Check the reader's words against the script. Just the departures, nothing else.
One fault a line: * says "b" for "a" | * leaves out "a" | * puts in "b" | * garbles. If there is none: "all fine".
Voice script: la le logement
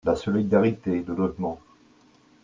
* puts in "solidarité"